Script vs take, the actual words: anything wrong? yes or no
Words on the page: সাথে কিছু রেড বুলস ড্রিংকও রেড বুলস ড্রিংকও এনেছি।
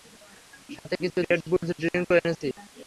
yes